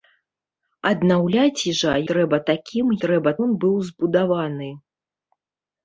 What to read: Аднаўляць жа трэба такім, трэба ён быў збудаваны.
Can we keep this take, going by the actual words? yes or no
yes